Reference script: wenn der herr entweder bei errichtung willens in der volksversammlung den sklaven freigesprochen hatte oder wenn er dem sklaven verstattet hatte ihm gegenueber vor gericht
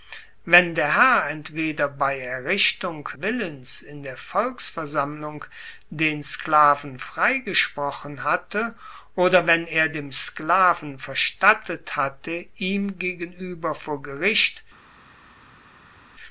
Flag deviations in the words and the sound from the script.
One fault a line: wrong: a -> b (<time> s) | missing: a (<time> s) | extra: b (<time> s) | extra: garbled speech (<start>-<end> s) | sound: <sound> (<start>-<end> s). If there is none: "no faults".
no faults